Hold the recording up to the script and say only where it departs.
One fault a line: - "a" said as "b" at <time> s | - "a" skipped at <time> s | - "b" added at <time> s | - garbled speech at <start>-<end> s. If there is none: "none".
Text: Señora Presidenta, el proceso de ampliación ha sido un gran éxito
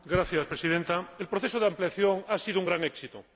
none